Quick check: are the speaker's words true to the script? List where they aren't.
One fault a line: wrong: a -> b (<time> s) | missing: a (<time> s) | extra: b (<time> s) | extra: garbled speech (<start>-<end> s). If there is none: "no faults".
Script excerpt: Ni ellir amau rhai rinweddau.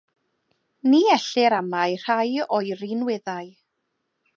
extra: o'i (2.6 s)